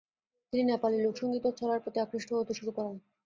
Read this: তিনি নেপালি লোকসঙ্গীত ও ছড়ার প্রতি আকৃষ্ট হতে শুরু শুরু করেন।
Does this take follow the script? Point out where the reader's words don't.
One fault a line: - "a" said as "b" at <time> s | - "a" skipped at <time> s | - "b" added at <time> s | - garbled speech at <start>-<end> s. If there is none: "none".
- "শুরু" skipped at 2.7 s